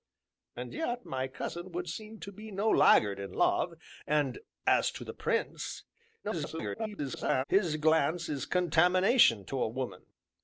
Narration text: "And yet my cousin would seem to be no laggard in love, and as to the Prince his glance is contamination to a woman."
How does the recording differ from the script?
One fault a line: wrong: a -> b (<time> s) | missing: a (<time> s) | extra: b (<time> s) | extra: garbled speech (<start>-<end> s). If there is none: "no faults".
extra: garbled speech (6.2-7.4 s)